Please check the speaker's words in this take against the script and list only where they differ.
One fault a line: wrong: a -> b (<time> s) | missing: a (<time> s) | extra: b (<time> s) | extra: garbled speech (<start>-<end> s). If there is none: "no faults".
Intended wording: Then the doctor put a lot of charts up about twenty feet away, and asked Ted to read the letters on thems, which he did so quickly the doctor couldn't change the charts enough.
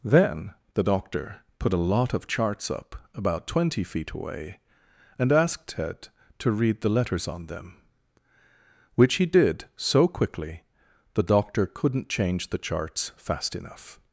wrong: thems -> them (7.5 s)
extra: fast (13.2 s)